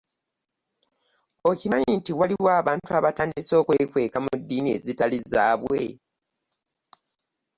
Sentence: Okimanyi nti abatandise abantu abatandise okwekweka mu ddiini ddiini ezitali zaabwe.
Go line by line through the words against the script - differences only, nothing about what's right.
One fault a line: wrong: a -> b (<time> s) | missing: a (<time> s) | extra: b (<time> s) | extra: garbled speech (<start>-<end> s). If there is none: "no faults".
wrong: abatandise -> waliwo (2.2 s)
missing: ddiini (4.7 s)